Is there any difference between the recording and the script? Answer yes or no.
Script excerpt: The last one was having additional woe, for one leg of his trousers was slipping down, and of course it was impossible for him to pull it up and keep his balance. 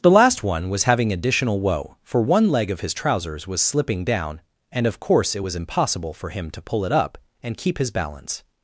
no